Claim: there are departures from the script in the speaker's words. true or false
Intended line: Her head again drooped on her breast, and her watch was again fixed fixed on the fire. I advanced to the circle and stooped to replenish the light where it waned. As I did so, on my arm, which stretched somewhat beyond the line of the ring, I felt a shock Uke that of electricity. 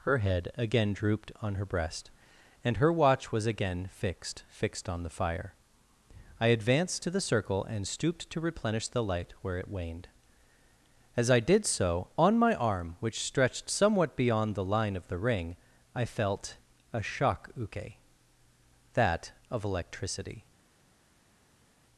false